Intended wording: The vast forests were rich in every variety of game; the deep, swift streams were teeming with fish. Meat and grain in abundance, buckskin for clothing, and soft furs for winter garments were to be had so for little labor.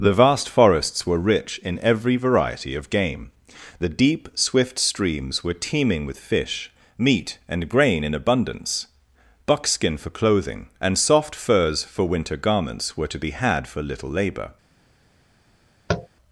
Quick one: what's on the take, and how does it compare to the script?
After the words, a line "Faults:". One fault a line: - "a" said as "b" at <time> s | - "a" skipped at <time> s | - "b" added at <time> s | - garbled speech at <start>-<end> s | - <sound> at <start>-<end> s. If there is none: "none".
The vast forests were rich in every variety of game; the deep, swift streams were teeming with fish. Meat and grain in abundance, buckskin for clothing, and soft furs for winter garments were to be had for little labor.
Faults:
- "so" skipped at 13.7 s
- tap at 15.9-16.1 s